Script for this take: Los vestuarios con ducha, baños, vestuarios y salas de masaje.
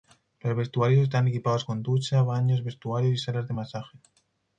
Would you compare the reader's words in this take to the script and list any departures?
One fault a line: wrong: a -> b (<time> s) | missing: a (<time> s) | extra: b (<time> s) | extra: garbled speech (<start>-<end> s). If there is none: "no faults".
extra: están equipados (1.0 s)